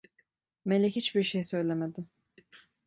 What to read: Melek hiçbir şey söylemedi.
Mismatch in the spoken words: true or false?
false